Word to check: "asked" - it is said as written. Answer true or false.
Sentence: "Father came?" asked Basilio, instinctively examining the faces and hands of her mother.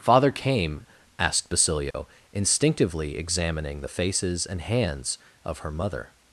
true